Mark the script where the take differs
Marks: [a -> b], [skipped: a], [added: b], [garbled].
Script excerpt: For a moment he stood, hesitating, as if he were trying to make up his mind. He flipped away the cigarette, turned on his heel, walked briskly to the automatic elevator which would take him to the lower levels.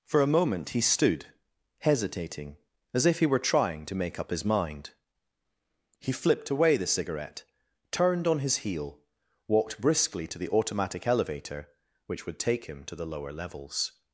For a moment he stood, hesitating, as if he were trying to make up his mind. He flipped away the cigarette, turned on his heel, walked briskly to the automatic elevator which would take him to the lower levels.